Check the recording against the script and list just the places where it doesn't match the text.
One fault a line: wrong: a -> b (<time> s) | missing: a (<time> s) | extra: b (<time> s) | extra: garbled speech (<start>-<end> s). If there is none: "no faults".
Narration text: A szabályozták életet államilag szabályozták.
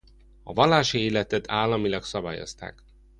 wrong: szabályozták -> vallási (0.5 s)